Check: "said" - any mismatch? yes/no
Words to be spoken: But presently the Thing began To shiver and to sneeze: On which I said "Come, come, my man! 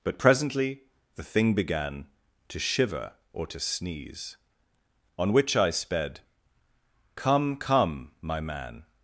yes